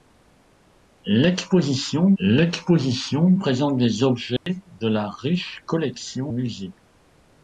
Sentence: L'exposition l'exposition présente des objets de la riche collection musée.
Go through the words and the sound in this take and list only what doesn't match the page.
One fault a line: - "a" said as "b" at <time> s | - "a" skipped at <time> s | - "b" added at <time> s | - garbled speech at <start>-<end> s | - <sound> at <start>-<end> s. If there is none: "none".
- dropout at 4.4-4.5 s